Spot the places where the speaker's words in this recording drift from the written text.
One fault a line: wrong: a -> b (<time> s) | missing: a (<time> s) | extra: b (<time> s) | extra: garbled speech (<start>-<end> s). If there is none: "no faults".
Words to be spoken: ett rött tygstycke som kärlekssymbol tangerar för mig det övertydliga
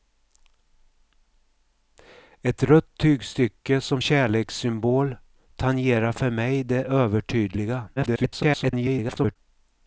extra: garbled speech (8.0-9.4 s)